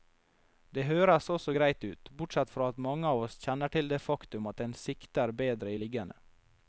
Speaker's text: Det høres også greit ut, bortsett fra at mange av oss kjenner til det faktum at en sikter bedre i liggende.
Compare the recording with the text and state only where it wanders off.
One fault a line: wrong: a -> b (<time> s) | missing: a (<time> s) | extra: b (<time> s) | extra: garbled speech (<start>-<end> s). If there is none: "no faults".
no faults